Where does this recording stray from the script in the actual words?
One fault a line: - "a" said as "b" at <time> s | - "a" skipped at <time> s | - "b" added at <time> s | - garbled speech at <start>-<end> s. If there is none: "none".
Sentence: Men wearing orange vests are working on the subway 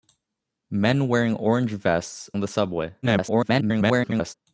- "are working" skipped at 2.3 s
- garbled speech at 3.0-4.3 s